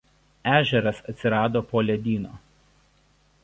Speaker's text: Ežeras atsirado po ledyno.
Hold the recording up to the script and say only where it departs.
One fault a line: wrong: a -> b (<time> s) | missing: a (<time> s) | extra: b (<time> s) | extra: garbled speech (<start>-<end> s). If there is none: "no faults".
no faults